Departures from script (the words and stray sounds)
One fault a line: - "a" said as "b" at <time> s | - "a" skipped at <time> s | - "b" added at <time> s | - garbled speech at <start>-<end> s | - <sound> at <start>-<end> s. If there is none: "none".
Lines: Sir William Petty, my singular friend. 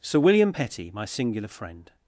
none